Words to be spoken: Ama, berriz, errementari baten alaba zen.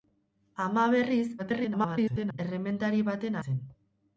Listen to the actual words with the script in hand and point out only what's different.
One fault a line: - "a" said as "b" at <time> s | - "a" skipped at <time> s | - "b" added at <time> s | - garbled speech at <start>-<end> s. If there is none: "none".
- garbled speech at 1.4-2.4 s
- "alaba" skipped at 3.4 s